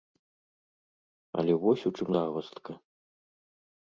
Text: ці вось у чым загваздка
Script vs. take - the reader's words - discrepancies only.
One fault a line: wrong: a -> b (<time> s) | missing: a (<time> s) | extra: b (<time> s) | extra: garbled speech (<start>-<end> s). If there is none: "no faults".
wrong: ці -> але (1.4 s)